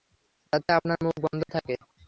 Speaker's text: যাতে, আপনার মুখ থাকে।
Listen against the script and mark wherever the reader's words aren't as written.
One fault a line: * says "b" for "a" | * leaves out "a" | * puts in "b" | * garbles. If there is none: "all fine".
* puts in "বন্ধ"